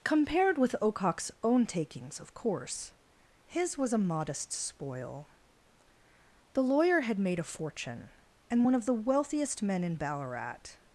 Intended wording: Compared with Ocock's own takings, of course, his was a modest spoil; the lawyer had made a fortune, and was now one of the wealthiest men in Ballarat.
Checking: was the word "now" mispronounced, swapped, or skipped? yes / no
yes